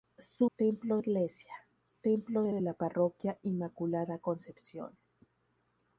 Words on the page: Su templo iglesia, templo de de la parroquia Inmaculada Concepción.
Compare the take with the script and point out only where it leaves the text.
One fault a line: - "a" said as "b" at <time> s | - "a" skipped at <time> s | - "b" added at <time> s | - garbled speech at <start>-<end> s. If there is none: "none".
none